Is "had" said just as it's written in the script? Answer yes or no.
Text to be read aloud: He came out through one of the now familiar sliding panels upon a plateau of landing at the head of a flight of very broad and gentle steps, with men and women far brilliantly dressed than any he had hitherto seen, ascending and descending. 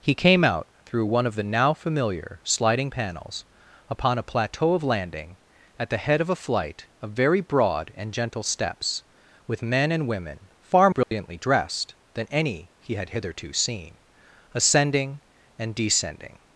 yes